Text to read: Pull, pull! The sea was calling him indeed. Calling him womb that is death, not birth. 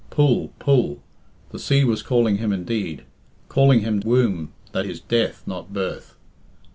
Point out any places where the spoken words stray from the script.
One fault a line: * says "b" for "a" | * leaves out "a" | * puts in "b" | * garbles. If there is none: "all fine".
all fine